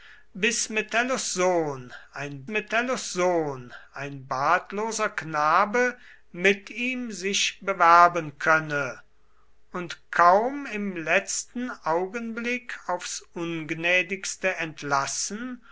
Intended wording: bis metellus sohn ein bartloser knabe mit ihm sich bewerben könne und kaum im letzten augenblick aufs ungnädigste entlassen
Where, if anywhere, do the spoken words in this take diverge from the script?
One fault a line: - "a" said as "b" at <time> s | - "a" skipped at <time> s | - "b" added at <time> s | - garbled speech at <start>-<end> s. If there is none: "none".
- "metellus sohn ein" added at 2.5 s